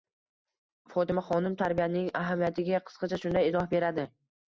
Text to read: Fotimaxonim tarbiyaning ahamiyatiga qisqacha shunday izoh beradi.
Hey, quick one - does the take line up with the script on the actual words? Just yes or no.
yes